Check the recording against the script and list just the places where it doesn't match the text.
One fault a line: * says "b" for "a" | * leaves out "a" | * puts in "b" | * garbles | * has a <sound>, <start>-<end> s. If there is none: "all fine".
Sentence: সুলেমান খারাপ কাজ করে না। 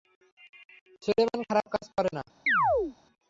* has a chirp, 2.5-3.0 s